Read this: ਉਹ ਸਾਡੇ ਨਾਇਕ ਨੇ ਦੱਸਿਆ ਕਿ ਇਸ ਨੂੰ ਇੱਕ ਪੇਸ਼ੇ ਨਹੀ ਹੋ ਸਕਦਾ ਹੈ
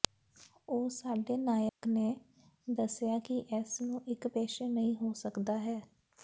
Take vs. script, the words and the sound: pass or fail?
fail